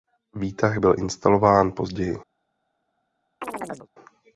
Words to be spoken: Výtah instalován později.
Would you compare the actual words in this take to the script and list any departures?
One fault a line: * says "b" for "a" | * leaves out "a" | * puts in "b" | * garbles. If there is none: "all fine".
* puts in "byl"